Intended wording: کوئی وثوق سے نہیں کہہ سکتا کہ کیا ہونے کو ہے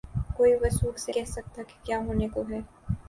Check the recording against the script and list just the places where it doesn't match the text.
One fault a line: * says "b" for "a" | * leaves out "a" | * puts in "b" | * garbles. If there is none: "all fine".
* leaves out "نہیں"